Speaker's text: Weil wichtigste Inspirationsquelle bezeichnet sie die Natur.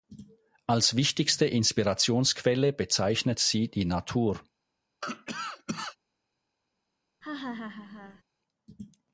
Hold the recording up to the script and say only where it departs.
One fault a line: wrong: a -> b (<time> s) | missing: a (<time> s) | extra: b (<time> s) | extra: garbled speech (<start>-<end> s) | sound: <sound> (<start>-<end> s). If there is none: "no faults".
wrong: Weil -> Als (0.7 s)
sound: cough (5.0-6.0 s)
sound: laugh (7.2-8.2 s)